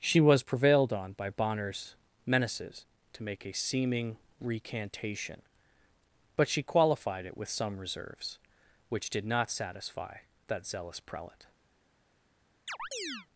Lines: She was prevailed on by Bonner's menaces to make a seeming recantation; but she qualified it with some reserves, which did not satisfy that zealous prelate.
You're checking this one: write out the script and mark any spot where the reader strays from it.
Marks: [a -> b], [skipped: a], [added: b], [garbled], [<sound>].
She was prevailed on by Bonner's menaces to make a seeming recantation; but she qualified it with some reserves, which did not satisfy that zealous prelate. [chirp]